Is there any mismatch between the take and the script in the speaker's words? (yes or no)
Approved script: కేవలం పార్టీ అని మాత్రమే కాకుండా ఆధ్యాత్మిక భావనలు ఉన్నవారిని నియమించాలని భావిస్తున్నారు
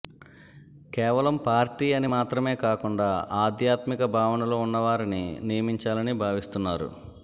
no